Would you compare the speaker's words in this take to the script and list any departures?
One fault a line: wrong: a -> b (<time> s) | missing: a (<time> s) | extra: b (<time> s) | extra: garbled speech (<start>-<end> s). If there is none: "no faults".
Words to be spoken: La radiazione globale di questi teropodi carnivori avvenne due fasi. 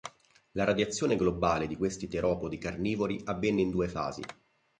extra: in (3.6 s)